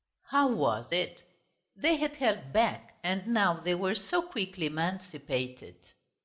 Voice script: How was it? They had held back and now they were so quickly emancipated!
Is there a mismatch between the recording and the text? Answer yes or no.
no